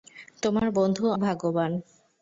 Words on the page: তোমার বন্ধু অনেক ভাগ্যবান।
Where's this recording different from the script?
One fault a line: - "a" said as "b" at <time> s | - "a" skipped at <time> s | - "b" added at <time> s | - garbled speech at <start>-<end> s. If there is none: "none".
- "অনেক" skipped at 1.0 s